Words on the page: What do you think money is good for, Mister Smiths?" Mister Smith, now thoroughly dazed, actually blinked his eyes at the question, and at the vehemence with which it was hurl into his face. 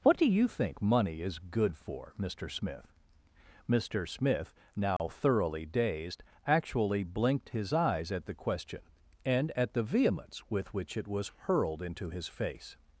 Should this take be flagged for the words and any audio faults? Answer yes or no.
yes